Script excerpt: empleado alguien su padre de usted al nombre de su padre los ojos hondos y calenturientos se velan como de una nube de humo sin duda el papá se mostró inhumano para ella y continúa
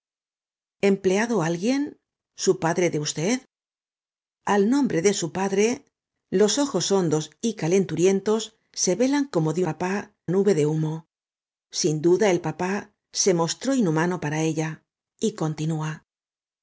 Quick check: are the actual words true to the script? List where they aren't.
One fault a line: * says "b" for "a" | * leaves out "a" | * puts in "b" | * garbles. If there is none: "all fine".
* says "papá" for "una"